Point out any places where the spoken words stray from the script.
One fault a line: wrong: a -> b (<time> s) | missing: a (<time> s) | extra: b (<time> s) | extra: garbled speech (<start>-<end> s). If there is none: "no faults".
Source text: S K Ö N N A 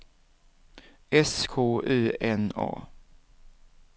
missing: N (2.5 s)